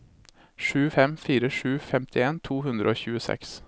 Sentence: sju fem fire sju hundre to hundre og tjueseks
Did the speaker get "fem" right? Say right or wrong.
right